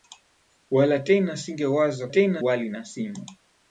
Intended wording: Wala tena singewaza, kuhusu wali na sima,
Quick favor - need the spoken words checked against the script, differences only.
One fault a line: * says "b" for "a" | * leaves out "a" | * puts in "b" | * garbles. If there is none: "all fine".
* says "tena" for "kuhusu"